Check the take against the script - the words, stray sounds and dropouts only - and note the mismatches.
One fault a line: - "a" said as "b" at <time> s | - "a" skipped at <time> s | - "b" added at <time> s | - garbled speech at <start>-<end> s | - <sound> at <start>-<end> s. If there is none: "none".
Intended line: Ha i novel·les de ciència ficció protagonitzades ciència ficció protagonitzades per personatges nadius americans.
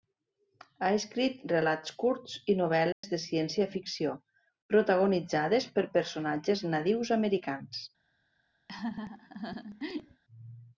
- "escrit relats curts" added at 1.0 s
- dropout at 2.9-3.0 s
- "ciència ficció protagonitzades" skipped at 5.7 s
- laugh at 8.7-10.2 s